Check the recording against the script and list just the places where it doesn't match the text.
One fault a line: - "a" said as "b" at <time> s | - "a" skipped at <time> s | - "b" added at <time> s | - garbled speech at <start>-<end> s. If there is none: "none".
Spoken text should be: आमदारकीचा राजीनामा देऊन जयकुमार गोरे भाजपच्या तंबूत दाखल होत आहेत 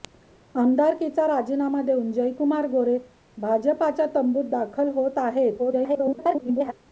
- garbled speech at 5.6-6.7 s